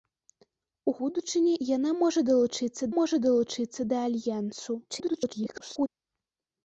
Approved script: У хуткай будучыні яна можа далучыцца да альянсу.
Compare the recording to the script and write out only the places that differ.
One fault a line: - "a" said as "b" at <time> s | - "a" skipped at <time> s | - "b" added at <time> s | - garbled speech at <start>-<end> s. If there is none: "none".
- "хуткай" skipped at 0.9 s
- "можа далучыцца" added at 3.0 s
- garbled speech at 4.9-5.9 s